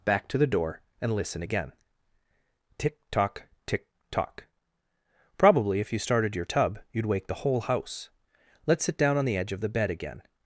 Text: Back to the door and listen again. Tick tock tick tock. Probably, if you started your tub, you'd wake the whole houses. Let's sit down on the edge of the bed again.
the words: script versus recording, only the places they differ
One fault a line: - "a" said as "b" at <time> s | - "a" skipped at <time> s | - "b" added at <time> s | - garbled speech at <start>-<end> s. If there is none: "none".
- "houses" said as "house" at 7.6 s